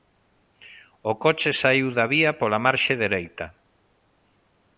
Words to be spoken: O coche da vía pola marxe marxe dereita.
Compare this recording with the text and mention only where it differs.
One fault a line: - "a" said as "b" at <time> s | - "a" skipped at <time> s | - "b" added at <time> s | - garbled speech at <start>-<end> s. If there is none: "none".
- "saíu" added at 1.6 s
- "marxe" skipped at 2.9 s